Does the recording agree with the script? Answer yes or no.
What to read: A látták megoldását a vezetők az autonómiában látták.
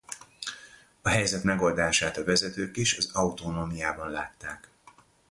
no